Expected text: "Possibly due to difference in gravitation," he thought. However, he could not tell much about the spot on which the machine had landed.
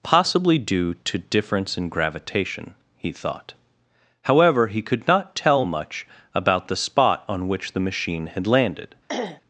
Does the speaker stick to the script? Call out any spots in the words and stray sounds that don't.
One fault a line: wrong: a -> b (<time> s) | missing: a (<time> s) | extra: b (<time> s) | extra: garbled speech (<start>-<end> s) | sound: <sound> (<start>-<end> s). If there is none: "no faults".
sound: throat clearing (9.1-9.4 s)